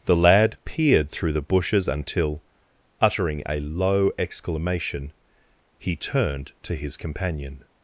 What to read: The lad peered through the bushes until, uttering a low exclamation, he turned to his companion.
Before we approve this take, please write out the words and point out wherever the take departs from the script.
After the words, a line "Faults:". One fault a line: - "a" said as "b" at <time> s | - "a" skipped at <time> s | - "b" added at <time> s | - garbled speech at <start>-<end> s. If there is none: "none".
The lad peered through the bushes until, uttering a low exclamation, he turned to his companion.
Faults:
none